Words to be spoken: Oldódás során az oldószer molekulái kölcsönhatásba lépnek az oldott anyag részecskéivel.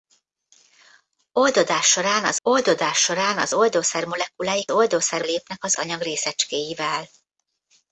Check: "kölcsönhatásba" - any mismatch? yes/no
yes